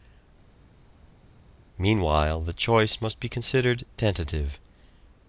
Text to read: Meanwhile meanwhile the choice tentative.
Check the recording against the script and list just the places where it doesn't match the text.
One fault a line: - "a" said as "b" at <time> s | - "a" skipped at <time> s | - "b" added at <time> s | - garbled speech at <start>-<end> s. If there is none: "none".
- "meanwhile" skipped at 2.4 s
- "must be considered" added at 3.0 s